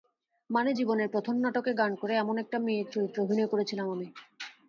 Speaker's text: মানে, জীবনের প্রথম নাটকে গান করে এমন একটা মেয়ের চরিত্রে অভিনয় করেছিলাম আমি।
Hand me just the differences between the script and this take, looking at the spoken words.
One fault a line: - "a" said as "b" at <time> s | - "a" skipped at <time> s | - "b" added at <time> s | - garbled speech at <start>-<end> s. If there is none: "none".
none